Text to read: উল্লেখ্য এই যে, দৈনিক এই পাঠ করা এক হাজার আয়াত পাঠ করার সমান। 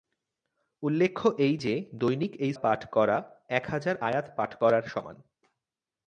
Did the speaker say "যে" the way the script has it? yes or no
yes